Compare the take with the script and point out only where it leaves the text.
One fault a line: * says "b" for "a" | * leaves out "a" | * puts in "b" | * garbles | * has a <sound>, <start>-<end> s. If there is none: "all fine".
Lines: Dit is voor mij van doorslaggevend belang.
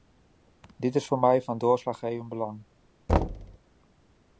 * has a thud, 3.1-3.6 s